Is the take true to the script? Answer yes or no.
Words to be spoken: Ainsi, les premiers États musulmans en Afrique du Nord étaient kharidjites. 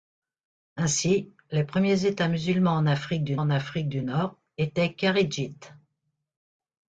no